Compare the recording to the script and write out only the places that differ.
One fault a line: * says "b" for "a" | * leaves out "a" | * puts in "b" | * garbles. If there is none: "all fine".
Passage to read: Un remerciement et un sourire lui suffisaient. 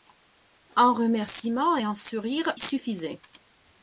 * leaves out "lui"